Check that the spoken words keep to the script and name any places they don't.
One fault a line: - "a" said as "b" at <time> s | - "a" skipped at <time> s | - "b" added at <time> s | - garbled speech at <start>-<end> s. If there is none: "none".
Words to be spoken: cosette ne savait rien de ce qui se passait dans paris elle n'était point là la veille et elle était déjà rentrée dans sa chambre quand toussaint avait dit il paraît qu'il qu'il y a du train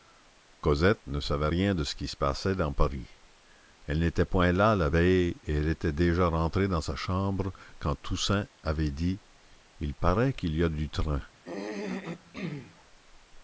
- "qu'il" skipped at 10.5 s